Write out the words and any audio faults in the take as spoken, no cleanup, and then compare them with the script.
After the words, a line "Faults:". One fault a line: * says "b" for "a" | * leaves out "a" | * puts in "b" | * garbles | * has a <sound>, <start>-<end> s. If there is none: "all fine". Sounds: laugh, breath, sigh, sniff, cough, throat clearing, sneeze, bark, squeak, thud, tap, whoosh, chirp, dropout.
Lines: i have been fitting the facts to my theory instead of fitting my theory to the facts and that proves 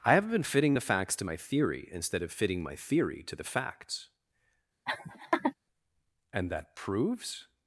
i have been fitting the facts to my theory instead of fitting my theory to the facts and that proves
Faults:
* has a laugh, 4.9-5.5 s